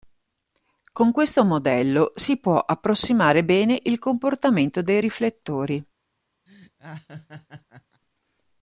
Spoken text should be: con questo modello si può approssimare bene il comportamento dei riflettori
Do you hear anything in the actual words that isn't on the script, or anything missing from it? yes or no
no